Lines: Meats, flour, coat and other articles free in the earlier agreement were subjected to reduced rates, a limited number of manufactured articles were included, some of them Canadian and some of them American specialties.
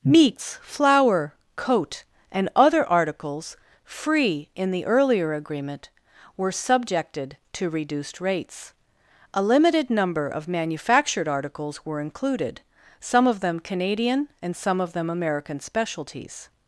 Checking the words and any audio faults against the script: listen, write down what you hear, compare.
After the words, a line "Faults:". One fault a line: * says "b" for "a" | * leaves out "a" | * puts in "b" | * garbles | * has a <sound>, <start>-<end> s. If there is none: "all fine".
Meats, flour, coat and other articles free in the earlier agreement were subjected to reduced rates, a limited number of manufactured articles were included, some of them Canadian and some of them American specialties.
Faults:
all fine